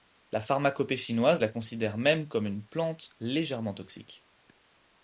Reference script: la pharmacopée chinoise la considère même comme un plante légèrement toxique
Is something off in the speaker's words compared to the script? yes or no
yes